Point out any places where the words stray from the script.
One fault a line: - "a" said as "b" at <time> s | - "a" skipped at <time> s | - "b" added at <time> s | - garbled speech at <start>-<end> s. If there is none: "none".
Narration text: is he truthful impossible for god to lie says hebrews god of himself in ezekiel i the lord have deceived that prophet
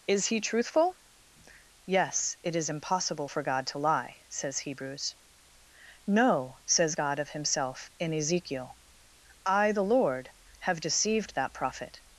- "yes it is" added at 1.9 s
- "no says" added at 6.1 s